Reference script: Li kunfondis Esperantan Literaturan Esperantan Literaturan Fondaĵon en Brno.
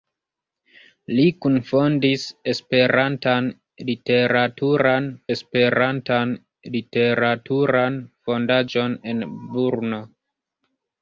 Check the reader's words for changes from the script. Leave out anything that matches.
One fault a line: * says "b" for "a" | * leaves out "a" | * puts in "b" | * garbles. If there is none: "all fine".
all fine